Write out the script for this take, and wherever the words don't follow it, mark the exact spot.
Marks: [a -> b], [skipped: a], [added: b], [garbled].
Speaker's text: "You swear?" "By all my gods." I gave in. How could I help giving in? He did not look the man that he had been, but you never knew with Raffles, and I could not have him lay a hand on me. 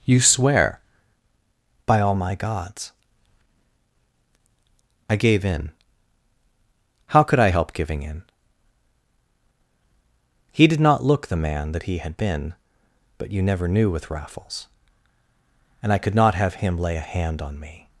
"You swear?" "By all my gods." I gave in. How could I help giving in? He did not look the man that he had been, but you never knew with Raffles, and I could not have him lay a hand on me.